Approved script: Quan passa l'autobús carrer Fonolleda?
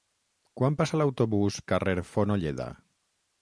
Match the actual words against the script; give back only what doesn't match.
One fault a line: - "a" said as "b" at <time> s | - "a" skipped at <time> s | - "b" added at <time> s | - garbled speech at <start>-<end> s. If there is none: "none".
none